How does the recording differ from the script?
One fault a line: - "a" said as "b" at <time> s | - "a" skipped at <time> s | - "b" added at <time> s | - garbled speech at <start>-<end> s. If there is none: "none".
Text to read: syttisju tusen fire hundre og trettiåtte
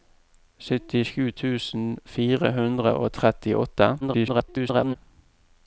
- garbled speech at 4.0-5.0 s